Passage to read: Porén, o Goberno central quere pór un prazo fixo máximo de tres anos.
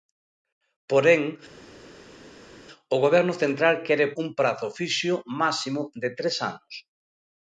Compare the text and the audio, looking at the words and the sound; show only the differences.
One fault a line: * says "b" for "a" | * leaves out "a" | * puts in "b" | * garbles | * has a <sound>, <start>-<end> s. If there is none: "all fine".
* leaves out "pór"